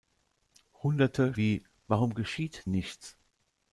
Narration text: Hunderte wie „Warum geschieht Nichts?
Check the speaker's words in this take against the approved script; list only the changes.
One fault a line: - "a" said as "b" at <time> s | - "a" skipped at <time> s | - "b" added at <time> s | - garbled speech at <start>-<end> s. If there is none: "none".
none